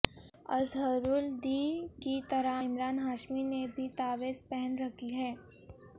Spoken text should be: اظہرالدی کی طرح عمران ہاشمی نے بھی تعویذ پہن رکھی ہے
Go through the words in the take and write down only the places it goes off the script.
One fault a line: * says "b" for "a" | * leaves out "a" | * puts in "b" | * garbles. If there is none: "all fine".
all fine